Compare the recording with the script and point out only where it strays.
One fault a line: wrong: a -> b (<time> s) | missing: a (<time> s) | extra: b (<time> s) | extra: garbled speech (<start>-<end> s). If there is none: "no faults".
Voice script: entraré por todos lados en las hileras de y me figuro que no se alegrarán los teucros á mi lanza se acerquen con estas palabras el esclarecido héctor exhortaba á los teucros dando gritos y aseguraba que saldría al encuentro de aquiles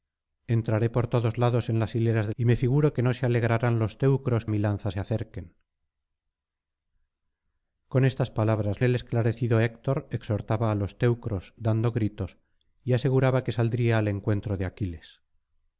no faults